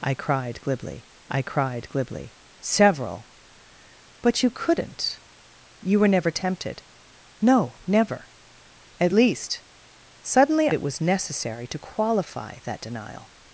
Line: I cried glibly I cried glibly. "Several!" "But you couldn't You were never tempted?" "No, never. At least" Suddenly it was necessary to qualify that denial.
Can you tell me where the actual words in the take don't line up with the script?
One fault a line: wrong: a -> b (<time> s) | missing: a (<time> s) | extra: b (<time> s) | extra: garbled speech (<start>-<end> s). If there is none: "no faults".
no faults